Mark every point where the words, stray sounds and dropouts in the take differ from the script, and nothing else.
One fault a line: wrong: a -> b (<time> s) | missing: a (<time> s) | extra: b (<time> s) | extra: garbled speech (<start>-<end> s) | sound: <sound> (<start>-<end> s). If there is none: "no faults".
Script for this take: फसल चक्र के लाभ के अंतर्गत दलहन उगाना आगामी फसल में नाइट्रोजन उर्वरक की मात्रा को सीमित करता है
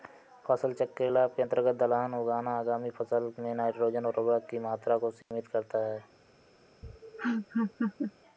sound: dropout (5.2-5.3 s)
sound: laugh (6.8-8.1 s)